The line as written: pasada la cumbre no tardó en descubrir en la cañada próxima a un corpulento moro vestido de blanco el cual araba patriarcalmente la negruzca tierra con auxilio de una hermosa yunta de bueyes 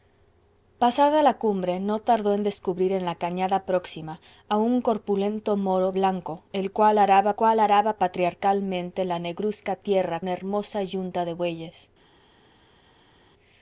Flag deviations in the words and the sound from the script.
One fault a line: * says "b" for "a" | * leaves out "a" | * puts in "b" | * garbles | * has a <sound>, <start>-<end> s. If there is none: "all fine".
* leaves out "vestido de"
* puts in "cual araba"
* leaves out "con auxilio de"